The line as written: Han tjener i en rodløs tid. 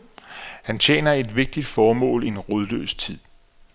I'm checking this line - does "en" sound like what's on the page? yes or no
yes